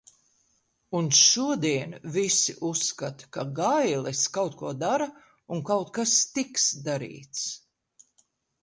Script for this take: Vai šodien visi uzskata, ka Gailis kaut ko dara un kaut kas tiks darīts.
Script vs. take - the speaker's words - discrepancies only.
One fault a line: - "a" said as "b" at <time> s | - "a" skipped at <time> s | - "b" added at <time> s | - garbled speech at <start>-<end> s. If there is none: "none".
- "Vai" said as "Un" at 1.0 s